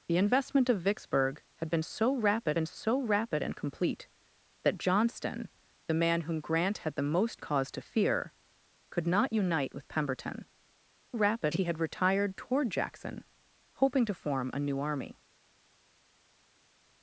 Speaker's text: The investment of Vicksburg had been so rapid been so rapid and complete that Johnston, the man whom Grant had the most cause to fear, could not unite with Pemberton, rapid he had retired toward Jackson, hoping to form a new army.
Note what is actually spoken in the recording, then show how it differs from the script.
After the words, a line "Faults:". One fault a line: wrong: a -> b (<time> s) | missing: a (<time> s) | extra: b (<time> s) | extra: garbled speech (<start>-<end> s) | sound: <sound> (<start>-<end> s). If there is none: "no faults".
The investment of Vicksburg had been so rapid been so rapid and complete that Johnston, the man whom Grant had the most cause to fear, could not unite with Pemberton, rapid he had retired toward Jackson, hoping to form a new army.
Faults:
no faults